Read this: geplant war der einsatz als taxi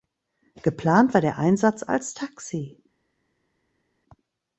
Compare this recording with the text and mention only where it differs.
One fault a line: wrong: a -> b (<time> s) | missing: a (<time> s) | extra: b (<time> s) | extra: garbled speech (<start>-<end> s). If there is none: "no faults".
no faults